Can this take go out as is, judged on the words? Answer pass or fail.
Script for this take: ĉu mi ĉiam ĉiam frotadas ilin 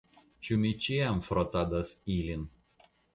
fail